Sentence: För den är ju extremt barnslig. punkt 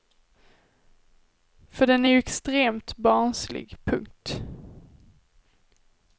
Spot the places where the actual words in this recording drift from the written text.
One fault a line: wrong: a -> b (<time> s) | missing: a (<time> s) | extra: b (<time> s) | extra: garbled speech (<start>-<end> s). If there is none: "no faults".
no faults